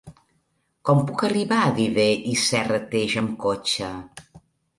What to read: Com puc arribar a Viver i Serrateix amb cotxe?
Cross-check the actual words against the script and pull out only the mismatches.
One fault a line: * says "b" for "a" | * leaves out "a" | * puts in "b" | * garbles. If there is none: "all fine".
all fine